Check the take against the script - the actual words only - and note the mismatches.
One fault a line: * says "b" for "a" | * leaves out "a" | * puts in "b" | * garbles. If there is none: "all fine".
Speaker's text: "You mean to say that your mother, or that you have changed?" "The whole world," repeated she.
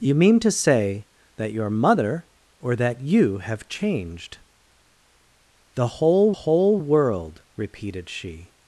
* puts in "whole"